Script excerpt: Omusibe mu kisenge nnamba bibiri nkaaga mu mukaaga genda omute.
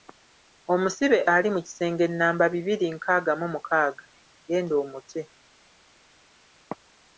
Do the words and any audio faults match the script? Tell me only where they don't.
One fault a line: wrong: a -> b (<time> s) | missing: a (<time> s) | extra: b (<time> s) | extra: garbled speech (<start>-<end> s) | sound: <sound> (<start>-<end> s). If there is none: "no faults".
extra: ali (1.3 s)